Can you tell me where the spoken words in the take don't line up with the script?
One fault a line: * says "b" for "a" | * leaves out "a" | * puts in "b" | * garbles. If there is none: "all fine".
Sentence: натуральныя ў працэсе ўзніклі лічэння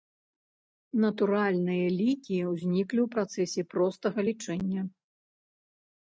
* puts in "лікі ўзніклі"
* says "простага" for "ўзніклі"